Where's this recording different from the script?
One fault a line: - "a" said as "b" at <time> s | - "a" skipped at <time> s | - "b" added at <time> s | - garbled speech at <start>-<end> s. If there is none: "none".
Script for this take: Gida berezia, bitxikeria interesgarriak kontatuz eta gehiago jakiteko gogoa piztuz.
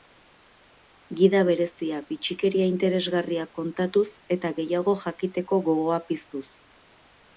none